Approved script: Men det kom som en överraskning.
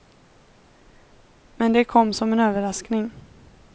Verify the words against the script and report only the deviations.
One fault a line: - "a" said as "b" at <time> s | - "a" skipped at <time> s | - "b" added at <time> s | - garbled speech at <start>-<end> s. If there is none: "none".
none